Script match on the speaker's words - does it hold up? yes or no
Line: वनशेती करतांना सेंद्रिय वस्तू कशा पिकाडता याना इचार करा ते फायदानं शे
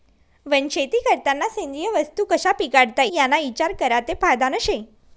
yes